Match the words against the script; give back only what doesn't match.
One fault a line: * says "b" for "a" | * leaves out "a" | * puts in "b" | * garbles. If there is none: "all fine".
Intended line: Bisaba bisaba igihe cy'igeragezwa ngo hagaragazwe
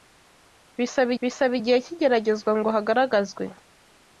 all fine